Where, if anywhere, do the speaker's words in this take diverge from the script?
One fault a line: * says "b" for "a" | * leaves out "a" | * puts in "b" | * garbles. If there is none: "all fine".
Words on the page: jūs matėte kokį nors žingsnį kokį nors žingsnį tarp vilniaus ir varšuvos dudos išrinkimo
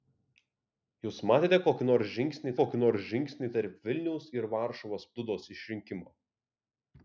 all fine